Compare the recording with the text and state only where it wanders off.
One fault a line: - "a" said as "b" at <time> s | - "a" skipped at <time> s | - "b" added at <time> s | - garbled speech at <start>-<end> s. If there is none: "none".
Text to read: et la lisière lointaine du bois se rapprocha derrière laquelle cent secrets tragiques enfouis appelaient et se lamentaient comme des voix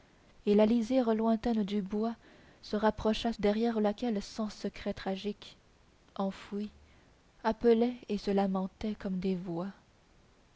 none